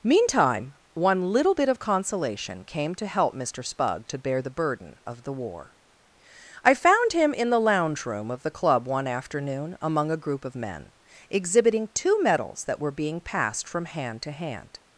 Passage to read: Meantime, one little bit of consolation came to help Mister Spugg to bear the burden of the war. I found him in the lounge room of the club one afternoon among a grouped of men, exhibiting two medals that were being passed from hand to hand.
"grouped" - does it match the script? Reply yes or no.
no